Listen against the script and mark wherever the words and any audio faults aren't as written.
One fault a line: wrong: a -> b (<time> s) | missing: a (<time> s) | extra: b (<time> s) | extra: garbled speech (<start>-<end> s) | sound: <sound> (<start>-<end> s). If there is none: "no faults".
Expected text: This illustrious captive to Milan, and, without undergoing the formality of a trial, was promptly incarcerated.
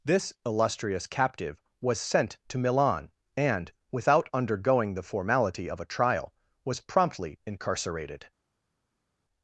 extra: was sent (1.8 s)